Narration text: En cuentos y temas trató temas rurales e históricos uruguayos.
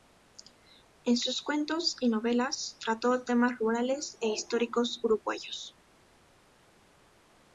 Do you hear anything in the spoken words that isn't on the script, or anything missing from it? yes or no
yes